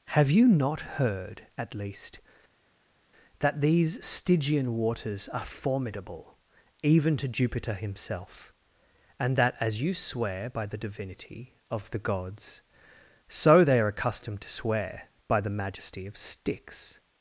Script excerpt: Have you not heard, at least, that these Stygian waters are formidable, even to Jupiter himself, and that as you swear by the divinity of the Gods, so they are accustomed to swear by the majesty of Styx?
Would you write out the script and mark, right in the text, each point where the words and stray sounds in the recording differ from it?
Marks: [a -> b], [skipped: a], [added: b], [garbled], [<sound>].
Have you not heard, at least, that these Stygian waters are formidable, even to Jupiter himself, and that as you swear by the divinity of the Gods, so they are accustomed to swear by the majesty of Styx?